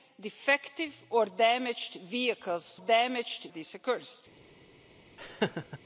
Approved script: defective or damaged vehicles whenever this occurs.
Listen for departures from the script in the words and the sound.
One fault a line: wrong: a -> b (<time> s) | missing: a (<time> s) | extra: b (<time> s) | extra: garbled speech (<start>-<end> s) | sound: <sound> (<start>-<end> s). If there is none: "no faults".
wrong: whenever -> damaged (2.7 s)
sound: laugh (5.2-5.8 s)